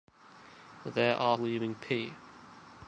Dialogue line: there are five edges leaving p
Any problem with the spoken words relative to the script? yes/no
yes